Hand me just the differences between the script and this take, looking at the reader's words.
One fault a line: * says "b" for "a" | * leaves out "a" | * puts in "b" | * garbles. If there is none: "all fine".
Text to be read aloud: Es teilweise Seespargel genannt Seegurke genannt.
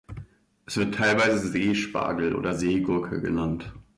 * puts in "wird"
* says "oder" for "genannt"